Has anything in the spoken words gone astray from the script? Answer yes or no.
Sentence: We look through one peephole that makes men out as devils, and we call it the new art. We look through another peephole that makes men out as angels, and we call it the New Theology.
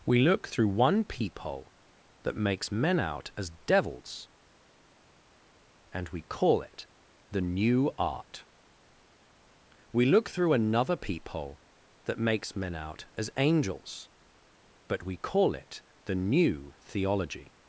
yes